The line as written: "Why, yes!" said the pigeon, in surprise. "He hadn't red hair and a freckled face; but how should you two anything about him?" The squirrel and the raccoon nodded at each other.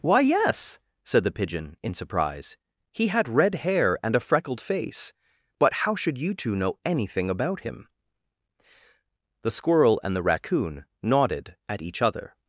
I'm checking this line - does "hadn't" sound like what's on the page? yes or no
no